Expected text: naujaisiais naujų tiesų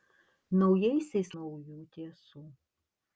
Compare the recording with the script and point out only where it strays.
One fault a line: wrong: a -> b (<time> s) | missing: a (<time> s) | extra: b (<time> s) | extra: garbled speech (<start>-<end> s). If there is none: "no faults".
no faults